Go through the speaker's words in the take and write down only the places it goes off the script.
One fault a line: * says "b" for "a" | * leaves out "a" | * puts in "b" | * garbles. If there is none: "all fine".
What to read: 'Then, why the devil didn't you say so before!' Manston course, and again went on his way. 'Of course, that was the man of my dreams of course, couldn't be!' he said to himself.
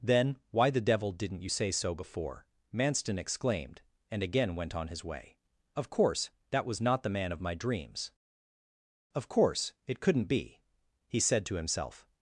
* says "exclaimed" for "course"
* puts in "not"
* puts in "it"